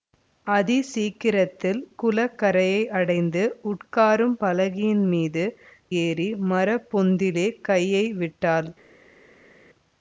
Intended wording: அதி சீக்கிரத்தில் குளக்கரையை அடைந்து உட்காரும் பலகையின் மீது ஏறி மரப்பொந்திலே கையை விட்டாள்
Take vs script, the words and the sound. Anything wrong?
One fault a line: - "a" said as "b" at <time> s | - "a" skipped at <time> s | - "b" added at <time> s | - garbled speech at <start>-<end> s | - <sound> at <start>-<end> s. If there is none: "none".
none